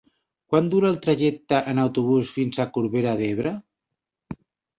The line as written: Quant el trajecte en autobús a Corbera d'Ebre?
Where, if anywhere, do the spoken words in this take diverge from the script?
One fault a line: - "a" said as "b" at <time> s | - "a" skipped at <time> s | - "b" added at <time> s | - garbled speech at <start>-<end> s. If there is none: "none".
- "dura" added at 0.7 s
- "fins" added at 2.3 s